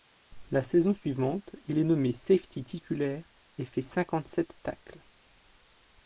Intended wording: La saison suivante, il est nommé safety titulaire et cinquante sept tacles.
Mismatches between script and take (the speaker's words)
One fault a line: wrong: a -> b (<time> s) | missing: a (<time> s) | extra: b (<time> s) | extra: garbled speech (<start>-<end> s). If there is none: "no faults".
extra: fait (3.7 s)